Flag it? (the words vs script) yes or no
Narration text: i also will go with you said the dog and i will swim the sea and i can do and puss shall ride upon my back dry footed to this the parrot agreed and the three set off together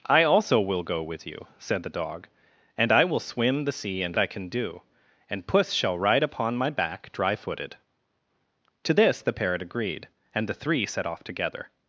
no